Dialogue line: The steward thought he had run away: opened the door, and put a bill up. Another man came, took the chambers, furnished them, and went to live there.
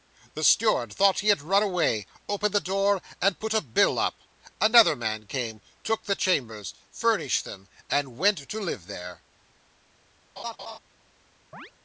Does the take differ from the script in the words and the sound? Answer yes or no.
yes